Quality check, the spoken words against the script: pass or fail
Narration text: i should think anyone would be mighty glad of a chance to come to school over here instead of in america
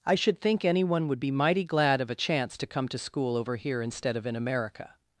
pass